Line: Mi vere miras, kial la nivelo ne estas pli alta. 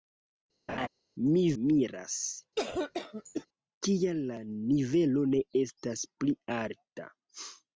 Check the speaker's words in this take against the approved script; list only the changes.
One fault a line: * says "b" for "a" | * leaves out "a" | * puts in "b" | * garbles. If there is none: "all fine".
* leaves out "vere"